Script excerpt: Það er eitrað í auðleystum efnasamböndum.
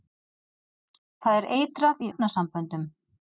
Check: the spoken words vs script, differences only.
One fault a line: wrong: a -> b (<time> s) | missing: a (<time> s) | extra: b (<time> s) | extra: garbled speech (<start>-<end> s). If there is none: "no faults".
missing: auðleystum (2.1 s)